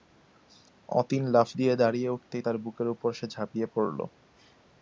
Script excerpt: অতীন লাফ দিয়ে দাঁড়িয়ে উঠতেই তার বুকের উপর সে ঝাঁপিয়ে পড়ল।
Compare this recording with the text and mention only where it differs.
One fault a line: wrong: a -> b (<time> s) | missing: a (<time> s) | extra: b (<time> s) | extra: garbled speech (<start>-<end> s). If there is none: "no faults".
no faults